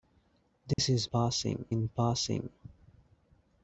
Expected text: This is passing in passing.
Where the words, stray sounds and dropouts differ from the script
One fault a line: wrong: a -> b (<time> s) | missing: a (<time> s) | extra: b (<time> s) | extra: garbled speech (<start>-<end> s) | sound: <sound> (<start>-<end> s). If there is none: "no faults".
sound: dropout (0.7-0.8 s)